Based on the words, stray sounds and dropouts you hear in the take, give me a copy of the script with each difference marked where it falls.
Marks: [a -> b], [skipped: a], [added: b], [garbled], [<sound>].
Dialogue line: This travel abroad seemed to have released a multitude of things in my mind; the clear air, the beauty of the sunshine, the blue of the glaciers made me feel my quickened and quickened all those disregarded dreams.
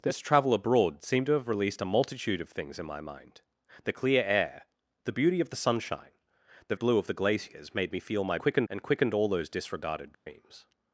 This travel abroad seemed to have released a multitude of things in my mind; the clear air, the beauty of the sunshine, the blue of the glaciers made me feel my quickened and quickened all those disregarded dreams. [dropout]